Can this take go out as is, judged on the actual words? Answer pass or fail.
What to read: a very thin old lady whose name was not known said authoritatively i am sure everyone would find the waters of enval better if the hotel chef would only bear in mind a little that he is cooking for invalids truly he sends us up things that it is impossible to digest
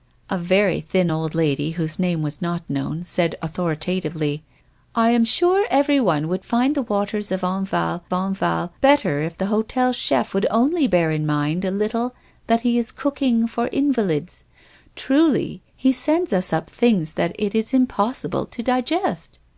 fail